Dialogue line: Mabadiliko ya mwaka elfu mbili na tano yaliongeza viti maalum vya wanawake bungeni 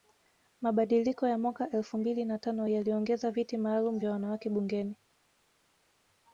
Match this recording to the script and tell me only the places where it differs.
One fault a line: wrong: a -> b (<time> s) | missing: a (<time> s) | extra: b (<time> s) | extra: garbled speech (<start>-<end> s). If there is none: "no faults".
no faults